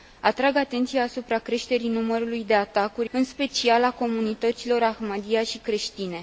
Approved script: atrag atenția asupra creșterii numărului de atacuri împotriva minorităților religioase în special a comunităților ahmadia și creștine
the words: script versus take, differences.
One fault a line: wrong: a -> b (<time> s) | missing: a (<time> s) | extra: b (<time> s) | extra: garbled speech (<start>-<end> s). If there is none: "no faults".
missing: împotriva minorităților religioase (3.1 s)